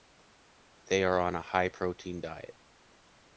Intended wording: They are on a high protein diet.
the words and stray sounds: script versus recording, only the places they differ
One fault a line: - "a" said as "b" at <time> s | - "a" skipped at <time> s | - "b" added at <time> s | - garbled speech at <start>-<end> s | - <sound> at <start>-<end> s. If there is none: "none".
none